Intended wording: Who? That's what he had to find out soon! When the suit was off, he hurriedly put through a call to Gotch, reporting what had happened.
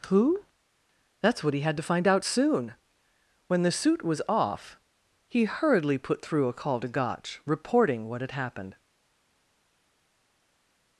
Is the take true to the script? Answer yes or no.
yes